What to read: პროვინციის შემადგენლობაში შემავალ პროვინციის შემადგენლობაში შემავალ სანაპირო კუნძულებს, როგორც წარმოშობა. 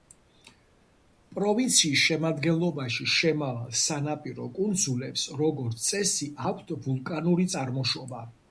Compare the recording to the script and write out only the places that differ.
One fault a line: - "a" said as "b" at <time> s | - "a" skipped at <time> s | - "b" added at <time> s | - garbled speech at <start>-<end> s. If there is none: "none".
- "პროვინციის შემადგენლობაში შემავალ სანაპირო კუნძულებს როგორც" said as "სანაპირო კუნძულებს როგორც წესი აქვთ ვულკანური" at 3.8 s